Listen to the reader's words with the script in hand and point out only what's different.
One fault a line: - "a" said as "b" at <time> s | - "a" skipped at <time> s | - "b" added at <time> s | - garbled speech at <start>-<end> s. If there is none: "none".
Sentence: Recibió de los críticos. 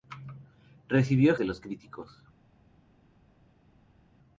none